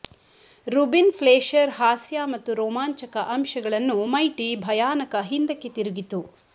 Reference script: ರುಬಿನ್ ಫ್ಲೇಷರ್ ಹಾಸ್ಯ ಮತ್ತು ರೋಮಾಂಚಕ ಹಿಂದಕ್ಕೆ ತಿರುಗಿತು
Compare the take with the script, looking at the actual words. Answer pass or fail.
fail